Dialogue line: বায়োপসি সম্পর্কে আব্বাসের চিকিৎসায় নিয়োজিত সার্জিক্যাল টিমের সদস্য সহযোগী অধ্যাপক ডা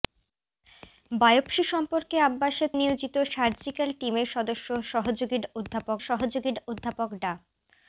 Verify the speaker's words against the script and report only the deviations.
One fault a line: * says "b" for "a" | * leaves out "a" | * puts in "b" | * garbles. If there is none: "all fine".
* leaves out "চিকিৎসায়"
* puts in "সহযোগী অধ্যাপক"